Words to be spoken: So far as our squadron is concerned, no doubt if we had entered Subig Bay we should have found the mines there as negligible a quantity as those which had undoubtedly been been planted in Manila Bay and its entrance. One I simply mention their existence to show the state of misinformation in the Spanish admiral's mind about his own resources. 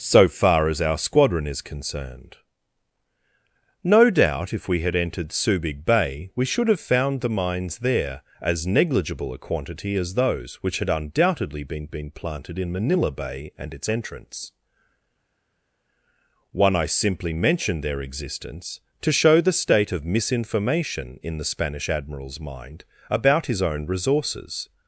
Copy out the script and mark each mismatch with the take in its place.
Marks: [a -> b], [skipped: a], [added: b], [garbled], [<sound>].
So far as our squadron is concerned, no doubt if we had entered Subig Bay we should have found the mines there as negligible a quantity as those which had undoubtedly been been planted in Manila Bay and its entrance. One I simply mention their existence to show the state of misinformation in the Spanish admiral's mind about his own resources.